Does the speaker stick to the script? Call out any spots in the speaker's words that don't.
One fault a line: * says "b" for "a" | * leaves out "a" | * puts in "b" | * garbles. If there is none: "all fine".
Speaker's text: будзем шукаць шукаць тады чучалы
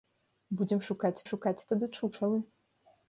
all fine